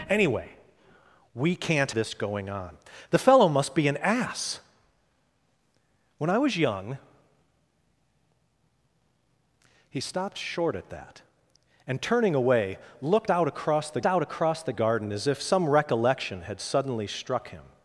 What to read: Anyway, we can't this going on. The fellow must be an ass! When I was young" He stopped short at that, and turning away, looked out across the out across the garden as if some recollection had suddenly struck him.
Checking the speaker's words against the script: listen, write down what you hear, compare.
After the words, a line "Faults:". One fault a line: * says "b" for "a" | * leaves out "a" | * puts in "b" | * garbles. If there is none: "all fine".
Anyway, we can't this going on. The fellow must be an ass! When I was young" He stopped short at that, and turning away, looked out across the out across the garden as if some recollection had suddenly struck him.
Faults:
all fine